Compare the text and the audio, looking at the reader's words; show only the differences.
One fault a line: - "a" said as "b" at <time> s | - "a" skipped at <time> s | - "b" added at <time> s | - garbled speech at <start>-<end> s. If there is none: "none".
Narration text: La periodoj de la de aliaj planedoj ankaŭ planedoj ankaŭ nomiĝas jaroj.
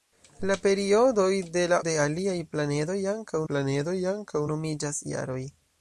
none